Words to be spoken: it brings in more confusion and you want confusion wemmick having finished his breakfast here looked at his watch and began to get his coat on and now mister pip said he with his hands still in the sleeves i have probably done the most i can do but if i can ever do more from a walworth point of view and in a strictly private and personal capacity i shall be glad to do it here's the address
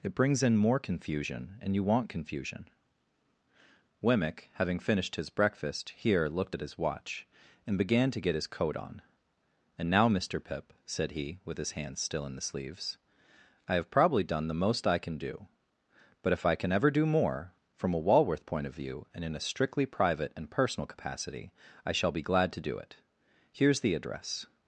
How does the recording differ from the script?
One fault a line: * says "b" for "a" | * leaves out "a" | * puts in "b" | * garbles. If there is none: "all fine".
all fine